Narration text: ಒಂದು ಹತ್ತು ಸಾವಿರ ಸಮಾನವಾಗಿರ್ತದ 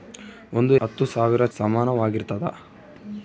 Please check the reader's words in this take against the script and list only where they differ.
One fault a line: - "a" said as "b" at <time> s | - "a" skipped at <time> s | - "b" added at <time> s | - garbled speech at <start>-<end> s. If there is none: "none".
none